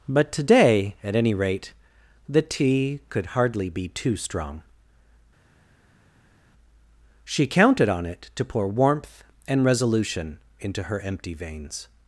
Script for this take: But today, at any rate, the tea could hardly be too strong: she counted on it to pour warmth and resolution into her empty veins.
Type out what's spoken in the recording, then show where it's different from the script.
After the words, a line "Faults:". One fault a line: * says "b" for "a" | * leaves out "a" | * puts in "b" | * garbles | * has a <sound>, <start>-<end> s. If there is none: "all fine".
But today, at any rate, the tea could hardly be too strong: she counted on it to pour warmth and resolution into her empty veins.
Faults:
all fine